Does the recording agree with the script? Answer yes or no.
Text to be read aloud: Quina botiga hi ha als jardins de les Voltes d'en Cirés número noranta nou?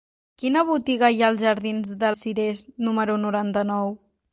no